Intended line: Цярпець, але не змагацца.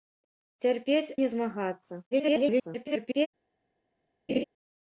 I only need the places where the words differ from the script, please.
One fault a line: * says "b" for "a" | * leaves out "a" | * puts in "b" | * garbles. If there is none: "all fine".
* leaves out "але"
* garbles